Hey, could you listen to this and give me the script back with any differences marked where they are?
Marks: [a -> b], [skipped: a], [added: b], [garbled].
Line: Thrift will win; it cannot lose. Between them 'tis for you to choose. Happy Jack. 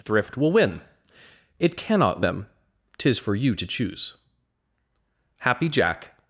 Thrift will win; it cannot [skipped: lose. Between] them 'tis for you to choose. Happy Jack.